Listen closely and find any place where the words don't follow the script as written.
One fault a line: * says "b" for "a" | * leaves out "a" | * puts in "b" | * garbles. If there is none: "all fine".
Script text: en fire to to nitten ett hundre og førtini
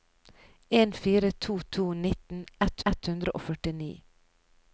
* puts in "ett"